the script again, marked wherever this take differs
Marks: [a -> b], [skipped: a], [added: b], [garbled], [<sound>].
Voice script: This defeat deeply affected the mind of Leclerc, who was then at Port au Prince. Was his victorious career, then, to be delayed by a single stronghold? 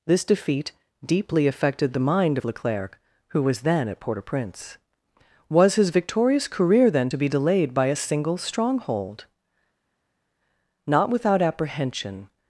This defeat deeply affected the mind of Leclerc, who was then at Port au Prince. Was his victorious career, then, to be delayed by a single stronghold? [added: Not without apprehension]